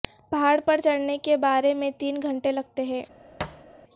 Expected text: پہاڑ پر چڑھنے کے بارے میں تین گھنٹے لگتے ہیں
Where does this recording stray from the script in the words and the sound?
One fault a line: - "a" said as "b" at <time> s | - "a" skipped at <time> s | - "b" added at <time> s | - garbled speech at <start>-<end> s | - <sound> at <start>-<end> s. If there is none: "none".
- thud at 3.4-3.6 s